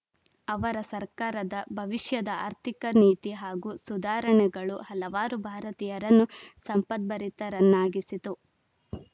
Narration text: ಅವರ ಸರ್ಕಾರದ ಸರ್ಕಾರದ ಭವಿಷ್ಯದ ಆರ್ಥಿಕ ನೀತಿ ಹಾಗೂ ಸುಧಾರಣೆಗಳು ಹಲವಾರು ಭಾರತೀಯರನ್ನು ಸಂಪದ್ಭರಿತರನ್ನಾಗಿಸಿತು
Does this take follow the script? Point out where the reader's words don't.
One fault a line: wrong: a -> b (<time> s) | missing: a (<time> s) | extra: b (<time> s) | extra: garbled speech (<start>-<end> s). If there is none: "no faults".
missing: ಸರ್ಕಾರದ (1.6 s)